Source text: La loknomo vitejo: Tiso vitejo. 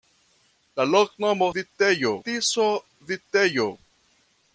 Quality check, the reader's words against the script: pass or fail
pass